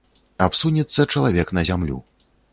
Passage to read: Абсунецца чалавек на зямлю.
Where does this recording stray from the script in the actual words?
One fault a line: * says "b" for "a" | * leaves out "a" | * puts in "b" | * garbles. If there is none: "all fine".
all fine